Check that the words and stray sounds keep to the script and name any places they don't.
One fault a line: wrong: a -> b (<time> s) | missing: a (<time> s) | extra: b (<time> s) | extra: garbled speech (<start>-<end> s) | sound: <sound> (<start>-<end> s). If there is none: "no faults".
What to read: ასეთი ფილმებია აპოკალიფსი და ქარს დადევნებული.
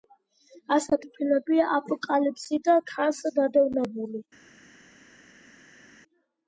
no faults